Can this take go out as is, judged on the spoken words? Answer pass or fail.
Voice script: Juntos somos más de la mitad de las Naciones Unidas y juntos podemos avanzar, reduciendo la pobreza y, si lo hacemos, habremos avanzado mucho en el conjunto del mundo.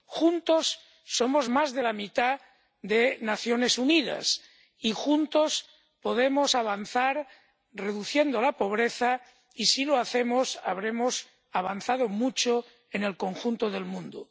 pass